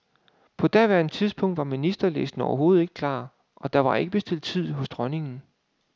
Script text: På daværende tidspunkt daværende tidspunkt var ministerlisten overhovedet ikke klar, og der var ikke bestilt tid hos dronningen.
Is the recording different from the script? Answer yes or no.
yes